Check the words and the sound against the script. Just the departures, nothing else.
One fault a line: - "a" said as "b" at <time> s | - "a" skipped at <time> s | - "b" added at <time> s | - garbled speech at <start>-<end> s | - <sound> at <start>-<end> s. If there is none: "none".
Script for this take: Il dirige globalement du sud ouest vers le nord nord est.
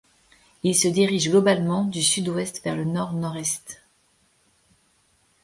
- "se" added at 0.8 s